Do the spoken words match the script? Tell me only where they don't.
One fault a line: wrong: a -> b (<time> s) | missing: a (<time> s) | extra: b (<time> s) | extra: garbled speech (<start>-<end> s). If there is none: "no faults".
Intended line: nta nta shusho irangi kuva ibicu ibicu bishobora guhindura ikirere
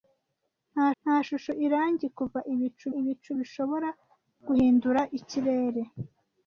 no faults